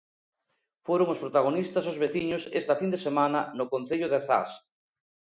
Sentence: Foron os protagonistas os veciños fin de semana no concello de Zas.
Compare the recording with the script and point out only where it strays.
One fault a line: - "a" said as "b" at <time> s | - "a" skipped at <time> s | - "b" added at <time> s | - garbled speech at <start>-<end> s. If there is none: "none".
- "esta" added at 2.6 s